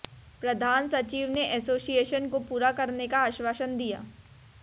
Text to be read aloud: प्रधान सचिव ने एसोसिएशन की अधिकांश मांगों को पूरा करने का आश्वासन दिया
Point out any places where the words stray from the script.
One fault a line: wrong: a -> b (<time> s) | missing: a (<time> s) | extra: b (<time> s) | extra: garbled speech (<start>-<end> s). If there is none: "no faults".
missing: की अधिकांश मांगों (2.3 s)